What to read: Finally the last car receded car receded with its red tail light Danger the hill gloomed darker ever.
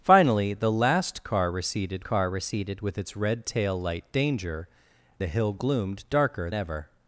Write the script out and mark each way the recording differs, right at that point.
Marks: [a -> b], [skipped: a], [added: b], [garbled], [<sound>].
Finally the last car receded car receded with its red tail light Danger the hill gloomed darker ever.